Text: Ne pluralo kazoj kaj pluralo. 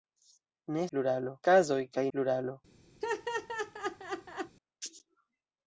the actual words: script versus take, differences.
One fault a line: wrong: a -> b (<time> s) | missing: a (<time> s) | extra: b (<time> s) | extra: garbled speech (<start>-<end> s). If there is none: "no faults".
no faults